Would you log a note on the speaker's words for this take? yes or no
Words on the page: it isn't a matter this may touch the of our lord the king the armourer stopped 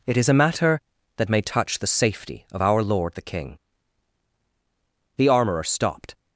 yes